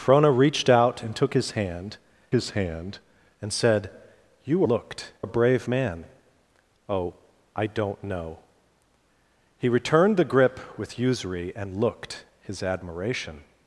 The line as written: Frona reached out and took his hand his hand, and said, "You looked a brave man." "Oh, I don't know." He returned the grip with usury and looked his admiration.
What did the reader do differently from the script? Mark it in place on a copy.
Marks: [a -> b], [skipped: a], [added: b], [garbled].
Frona reached out and took his hand his hand, and said, "You looked a brave man." "Oh, I don't know." He returned the grip with usury and looked his admiration.